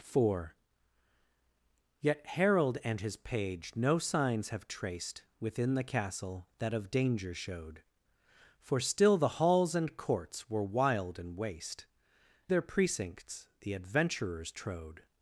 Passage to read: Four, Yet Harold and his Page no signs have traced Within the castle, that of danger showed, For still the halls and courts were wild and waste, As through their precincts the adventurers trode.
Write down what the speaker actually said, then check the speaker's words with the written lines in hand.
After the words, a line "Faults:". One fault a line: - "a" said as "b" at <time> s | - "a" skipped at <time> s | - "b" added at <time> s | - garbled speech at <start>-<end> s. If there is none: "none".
Four, Yet Harold and his Page no signs have traced Within the castle, that of danger showed, For still the halls and courts were wild and waste, Their precincts the adventurers trode.
Faults:
- "As through" skipped at 11.8 s